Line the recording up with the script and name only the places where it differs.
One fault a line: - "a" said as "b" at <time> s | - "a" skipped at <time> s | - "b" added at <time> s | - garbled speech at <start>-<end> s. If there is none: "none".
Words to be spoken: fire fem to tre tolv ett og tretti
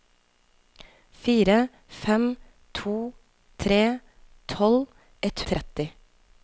none